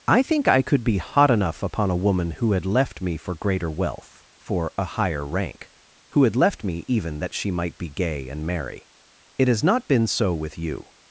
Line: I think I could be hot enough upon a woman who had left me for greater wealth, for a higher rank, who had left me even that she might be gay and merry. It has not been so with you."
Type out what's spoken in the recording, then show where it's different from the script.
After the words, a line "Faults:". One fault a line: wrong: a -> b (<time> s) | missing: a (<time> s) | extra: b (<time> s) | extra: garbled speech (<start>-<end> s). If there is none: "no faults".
I think I could be hot enough upon a woman who had left me for greater wealth, for a higher rank, who had left me even that she might be gay and merry. It has not been so with you."
Faults:
no faults